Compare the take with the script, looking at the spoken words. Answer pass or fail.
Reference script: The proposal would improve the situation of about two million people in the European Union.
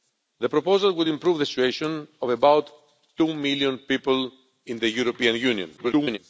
fail